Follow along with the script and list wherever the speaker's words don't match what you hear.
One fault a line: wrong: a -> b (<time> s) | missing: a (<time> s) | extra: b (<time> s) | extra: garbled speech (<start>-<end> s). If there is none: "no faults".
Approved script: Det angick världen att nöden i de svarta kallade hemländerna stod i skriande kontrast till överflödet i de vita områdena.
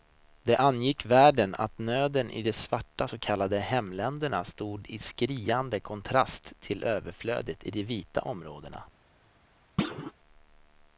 extra: så (3.0 s)